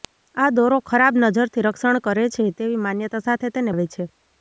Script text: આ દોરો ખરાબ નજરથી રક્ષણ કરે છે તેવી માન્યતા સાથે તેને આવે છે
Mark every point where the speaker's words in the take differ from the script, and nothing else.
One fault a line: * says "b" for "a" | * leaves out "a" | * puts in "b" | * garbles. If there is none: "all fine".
all fine